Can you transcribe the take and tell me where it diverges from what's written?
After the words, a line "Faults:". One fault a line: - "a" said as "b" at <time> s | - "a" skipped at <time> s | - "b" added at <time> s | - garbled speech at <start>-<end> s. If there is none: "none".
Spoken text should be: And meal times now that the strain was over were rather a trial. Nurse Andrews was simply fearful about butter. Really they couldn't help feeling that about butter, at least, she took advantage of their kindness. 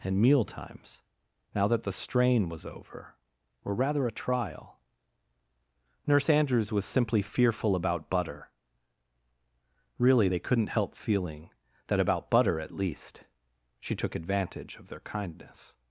And meal times now that the strain was over were rather a trial. Nurse Andrews was simply fearful about butter. Really they couldn't help feeling that about butter, at least, she took advantage of their kindness.
Faults:
none